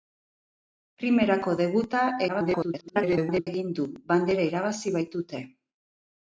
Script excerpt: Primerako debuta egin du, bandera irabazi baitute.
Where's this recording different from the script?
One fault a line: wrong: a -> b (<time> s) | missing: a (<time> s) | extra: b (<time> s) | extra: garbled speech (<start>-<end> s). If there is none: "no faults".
extra: garbled speech (2.3-3.5 s)